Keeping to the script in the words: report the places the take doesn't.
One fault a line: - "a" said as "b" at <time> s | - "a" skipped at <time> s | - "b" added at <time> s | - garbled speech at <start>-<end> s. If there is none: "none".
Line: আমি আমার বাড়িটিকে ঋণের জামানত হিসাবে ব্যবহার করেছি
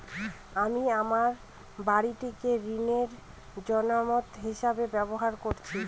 none